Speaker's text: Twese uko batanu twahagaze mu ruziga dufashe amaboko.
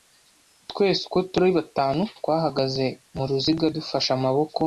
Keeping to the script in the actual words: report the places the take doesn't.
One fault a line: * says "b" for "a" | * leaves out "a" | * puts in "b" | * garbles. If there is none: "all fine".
* puts in "turi"